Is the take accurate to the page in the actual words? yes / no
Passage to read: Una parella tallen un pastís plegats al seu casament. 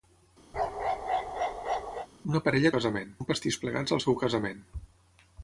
no